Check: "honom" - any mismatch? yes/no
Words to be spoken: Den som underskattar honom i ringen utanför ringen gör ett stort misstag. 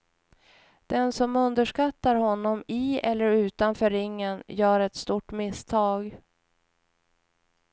no